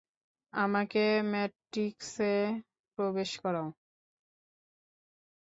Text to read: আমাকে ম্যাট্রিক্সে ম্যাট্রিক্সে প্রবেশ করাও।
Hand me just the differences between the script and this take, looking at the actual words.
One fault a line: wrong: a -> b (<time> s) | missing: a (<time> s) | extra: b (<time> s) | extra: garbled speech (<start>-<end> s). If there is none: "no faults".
missing: ম্যাট্রিক্সে (2.3 s)